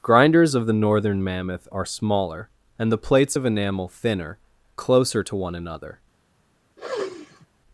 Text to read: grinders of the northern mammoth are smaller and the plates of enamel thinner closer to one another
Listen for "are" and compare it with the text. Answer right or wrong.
right